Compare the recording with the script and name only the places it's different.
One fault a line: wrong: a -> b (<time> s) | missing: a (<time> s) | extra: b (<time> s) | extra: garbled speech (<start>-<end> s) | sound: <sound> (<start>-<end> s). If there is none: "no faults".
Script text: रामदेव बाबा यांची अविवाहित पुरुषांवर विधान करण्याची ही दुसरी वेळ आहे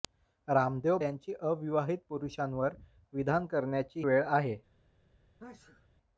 missing: बाबा (1.0 s)
missing: ही दुसरी (4.0 s)
sound: sneeze (5.4-5.9 s)